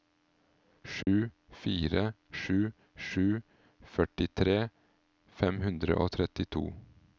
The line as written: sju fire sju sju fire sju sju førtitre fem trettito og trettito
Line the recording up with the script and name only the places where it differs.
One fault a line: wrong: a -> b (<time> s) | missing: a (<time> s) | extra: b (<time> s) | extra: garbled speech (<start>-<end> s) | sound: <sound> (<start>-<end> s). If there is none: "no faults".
sound: dropout (1.0-1.1 s)
missing: fire sju sju (3.3 s)
wrong: trettito -> hundre (5.7 s)